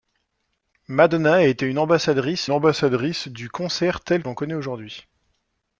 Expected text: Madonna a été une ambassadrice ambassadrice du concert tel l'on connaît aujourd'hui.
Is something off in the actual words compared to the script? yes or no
no